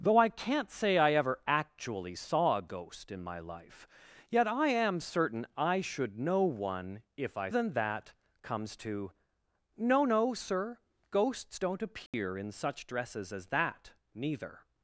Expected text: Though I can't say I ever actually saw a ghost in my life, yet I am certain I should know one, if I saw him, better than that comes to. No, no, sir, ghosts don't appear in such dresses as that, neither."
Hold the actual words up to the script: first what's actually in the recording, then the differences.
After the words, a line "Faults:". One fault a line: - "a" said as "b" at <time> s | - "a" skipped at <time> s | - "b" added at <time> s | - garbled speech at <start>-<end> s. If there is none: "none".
Though I can't say I ever actually saw a ghost in my life, yet I am certain I should know one, if I than that comes to. No, no, sir, ghosts don't appear in such dresses as that, neither."
Faults:
- "saw him better" skipped at 7.5 s